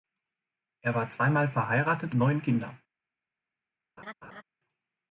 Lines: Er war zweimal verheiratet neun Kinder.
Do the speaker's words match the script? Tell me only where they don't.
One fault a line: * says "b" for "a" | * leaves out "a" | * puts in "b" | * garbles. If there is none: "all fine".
all fine